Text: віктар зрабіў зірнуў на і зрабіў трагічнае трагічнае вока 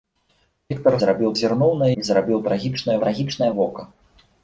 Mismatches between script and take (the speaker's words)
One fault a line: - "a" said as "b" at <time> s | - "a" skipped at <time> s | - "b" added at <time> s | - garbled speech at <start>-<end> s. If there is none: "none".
none